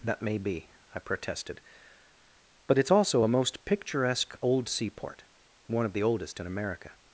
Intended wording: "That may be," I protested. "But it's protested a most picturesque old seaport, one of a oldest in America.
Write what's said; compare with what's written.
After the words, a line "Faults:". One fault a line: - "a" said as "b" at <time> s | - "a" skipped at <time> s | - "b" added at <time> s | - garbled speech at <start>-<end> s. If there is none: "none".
"That may be," I protested. "But it's also a most picturesque old seaport, one of the oldest in America.
Faults:
- "protested" said as "also" at 2.9 s
- "a" said as "the" at 5.9 s